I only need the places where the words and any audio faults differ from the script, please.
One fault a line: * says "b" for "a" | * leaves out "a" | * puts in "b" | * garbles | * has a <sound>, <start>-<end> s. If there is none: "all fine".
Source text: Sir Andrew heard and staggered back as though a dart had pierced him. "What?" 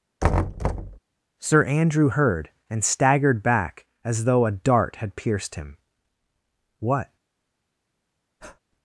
* has a thud, 0.2-1.0 s
* has a breath, 8.4-8.6 s